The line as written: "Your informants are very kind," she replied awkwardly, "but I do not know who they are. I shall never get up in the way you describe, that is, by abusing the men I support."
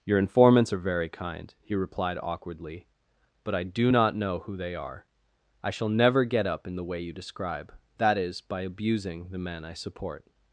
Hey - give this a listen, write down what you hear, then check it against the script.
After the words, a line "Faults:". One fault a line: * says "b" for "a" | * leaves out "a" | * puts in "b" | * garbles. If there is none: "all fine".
"Your informants are very kind," he replied awkwardly, "but I do not know who they are. I shall never get up in the way you describe, that is, by abusing the men I support."
Faults:
* says "he" for "she"